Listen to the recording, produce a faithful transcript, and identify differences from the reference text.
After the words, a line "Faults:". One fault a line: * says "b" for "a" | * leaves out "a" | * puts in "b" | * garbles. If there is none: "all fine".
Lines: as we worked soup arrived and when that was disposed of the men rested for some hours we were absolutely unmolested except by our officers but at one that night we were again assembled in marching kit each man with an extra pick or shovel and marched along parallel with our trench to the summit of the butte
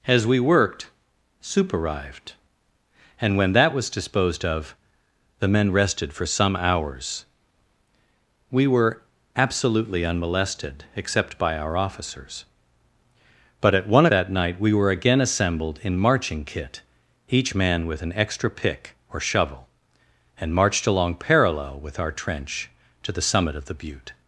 as we worked soup arrived and when that was disposed of the men rested for some hours we were absolutely unmolested except by our officers but at one that night we were again assembled in marching kit each man with an extra pick or shovel and marched along parallel with our trench to the summit of the butte
Faults:
all fine